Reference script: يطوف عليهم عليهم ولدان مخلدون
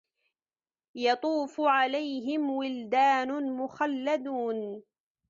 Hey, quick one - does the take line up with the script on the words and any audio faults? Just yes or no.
no